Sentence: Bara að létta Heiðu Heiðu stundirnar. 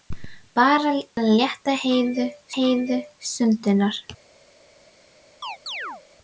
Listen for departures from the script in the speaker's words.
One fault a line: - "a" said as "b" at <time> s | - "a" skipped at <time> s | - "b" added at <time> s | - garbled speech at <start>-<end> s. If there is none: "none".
none